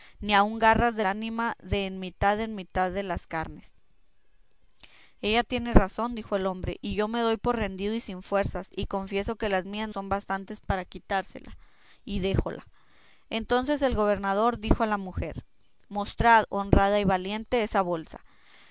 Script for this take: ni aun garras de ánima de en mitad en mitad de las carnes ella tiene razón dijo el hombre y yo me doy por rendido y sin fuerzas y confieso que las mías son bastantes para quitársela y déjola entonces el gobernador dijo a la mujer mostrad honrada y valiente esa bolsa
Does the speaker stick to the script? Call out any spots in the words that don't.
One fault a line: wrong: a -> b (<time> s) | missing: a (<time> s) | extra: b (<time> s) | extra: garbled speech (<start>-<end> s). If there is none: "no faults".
no faults